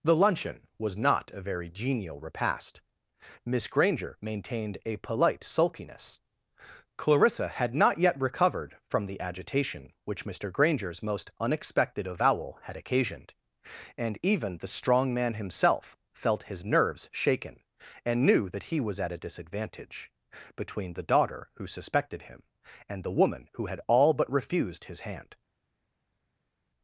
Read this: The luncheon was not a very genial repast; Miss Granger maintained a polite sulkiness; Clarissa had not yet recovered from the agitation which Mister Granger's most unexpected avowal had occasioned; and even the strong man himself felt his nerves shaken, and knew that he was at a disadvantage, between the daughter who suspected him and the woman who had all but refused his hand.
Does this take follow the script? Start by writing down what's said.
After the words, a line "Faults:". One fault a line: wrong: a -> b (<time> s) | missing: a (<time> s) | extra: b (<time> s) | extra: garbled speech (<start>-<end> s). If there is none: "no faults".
The luncheon was not a very genial repast; Miss Granger maintained a polite sulkiness; Clarissa had not yet recovered from the agitation which Mister Granger's most unexpected avowal had occasioned; and even the strong man himself felt his nerves shaken, and knew that he was at a disadvantage, between the daughter who suspected him and the woman who had all but refused his hand.
Faults:
no faults